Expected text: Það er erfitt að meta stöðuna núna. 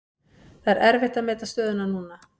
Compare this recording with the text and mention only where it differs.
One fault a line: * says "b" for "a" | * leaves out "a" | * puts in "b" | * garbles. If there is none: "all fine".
all fine